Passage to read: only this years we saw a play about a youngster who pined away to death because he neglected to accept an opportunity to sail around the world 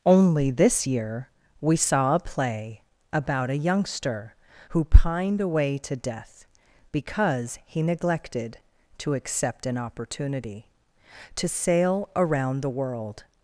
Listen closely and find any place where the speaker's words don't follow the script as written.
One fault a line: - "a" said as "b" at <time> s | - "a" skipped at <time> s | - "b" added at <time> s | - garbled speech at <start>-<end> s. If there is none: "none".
- "years" said as "year" at 0.9 s